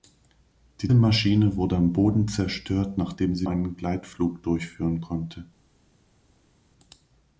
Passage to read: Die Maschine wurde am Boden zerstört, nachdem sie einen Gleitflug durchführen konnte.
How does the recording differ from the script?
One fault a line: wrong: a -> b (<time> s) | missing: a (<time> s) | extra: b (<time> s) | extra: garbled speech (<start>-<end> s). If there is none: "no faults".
no faults